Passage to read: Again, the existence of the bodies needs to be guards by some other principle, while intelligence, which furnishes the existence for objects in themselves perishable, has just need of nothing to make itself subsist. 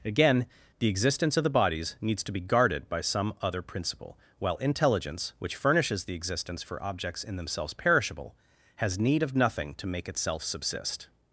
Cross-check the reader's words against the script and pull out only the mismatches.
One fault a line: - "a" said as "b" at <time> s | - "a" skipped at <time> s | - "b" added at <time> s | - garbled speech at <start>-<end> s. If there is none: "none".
- "guards" said as "guarded" at 2.4 s
- "just" skipped at 9.0 s